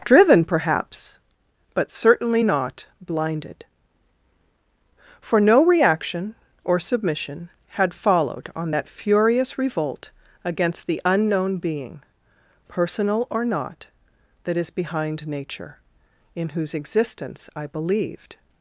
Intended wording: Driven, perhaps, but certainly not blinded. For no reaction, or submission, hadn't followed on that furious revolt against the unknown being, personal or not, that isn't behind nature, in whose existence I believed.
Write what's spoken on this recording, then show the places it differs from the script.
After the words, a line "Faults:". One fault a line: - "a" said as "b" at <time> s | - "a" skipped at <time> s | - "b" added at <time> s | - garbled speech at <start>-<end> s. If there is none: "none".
Driven, perhaps, but certainly not blinded. For no reaction, or submission, had followed on that furious revolt against the unknown being, personal or not, that is behind nature, in whose existence I believed.
Faults:
- "hadn't" said as "had" at 7.7 s
- "isn't" said as "is" at 14.6 s